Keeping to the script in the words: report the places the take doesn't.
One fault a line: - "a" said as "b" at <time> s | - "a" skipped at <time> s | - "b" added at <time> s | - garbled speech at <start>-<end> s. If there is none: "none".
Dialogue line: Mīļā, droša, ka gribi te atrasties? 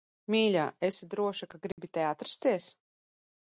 - "esi" added at 0.9 s